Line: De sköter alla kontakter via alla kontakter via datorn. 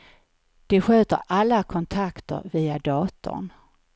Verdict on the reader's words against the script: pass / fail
fail